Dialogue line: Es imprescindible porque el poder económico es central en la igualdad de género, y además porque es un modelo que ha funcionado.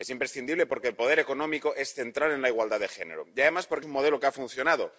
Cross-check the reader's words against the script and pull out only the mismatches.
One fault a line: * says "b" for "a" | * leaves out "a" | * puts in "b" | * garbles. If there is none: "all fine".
* leaves out "es"